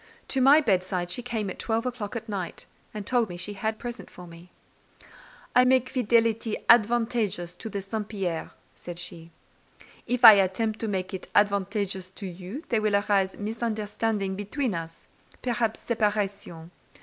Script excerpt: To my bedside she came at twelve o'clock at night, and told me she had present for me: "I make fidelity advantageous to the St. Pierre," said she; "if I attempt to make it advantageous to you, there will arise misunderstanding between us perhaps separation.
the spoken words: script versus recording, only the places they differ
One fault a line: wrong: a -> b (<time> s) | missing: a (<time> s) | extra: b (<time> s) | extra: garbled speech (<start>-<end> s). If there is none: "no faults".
no faults